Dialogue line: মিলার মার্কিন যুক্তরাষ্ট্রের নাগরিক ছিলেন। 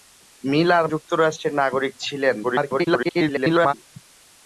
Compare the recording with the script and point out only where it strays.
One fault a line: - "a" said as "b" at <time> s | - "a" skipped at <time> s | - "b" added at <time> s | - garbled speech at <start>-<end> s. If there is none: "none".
- "মার্কিন" skipped at 0.9 s
- garbled speech at 2.4-3.7 s